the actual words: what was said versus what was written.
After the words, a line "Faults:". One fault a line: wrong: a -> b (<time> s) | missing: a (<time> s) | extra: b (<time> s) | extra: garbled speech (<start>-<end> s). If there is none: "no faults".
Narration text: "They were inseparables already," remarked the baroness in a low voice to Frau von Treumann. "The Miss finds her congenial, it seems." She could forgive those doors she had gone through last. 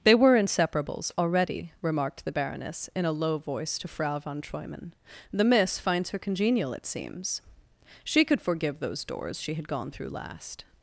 "They were inseparables already," remarked the baroness in a low voice to Frau von Treumann. "The Miss finds her congenial, it seems." She could forgive those doors she had gone through last.
Faults:
no faults